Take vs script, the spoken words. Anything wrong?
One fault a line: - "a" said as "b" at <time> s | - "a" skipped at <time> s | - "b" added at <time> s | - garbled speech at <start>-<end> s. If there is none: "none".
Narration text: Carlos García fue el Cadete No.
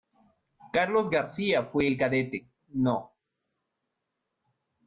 none